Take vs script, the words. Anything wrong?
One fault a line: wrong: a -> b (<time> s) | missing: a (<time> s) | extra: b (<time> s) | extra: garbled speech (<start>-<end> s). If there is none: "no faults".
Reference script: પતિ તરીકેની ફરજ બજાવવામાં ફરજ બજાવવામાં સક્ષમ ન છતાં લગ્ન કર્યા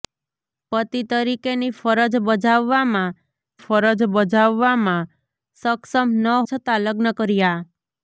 no faults